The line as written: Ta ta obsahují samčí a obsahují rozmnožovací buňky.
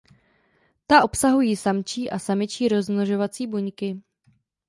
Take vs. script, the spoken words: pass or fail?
fail